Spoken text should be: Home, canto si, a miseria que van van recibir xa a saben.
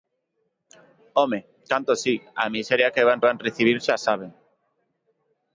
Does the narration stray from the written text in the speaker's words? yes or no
no